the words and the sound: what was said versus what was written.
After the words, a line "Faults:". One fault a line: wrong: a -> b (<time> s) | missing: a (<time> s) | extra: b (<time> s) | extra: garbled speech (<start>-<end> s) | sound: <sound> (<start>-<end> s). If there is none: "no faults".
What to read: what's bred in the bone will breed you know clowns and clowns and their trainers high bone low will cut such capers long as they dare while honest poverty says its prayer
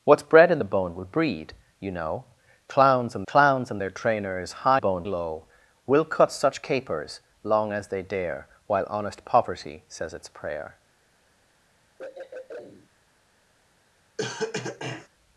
what's bred in the bone will breed you know clowns and clowns and their trainers high bone low will cut such capers long as they dare while honest poverty says its prayer
Faults:
sound: throat clearing (12.0-12.9 s)
sound: cough (14.2-15.1 s)